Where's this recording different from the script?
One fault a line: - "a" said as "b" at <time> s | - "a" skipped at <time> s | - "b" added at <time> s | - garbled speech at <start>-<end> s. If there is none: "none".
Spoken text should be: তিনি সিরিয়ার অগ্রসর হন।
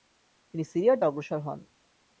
none